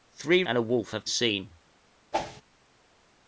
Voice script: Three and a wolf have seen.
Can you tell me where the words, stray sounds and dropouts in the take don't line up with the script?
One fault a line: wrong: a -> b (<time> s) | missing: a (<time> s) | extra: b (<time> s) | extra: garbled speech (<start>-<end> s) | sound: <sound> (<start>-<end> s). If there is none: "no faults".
sound: whoosh (2.1-2.4 s)